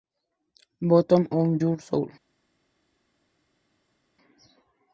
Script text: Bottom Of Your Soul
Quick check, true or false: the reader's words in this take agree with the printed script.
true